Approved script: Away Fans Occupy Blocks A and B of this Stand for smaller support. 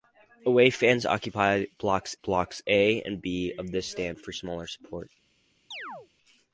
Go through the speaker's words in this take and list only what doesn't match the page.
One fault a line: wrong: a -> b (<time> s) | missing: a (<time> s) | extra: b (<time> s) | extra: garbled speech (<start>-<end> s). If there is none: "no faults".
extra: Blocks (2.2 s)